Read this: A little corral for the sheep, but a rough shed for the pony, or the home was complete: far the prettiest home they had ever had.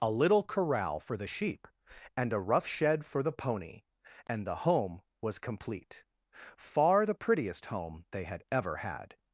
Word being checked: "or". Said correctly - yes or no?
no